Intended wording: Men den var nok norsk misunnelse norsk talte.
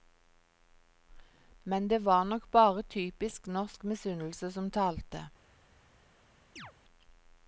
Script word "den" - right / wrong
wrong